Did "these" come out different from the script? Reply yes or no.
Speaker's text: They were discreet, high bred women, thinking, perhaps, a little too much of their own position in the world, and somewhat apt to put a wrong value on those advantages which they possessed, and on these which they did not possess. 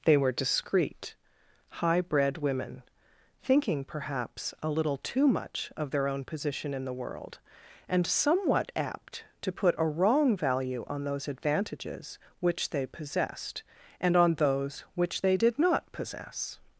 yes